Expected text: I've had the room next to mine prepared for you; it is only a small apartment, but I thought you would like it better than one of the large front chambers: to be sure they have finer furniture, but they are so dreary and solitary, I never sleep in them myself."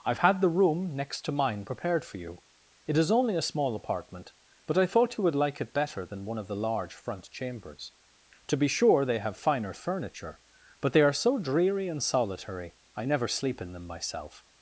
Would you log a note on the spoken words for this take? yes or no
no